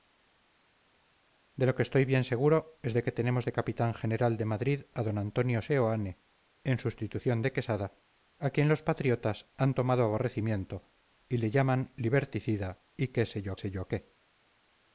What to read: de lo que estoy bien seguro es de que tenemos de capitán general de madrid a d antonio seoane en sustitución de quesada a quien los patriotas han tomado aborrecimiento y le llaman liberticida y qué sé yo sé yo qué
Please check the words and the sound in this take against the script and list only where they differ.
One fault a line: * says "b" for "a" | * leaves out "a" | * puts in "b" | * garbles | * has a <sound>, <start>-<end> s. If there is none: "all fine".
all fine